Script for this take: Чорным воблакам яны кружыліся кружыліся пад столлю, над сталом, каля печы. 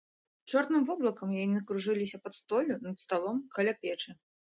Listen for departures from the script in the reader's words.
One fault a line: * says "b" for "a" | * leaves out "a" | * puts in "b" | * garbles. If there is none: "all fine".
* leaves out "кружыліся"